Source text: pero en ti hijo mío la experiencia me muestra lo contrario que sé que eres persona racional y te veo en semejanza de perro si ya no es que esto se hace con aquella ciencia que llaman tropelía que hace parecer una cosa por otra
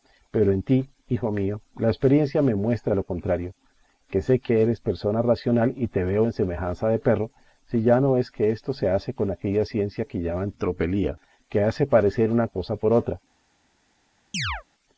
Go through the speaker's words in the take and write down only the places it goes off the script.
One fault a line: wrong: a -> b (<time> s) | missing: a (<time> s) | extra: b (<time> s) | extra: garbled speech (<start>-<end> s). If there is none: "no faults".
no faults